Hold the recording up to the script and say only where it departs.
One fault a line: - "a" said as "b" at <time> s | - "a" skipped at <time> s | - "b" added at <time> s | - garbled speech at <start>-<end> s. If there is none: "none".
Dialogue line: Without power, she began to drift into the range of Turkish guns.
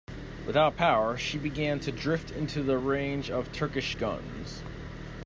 none